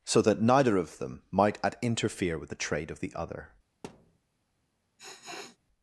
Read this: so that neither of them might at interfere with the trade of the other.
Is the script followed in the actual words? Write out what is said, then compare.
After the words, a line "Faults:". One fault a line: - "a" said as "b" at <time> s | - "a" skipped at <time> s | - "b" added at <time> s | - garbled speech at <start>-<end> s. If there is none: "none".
so that neither of them might at interfere with the trade of the other.
Faults:
none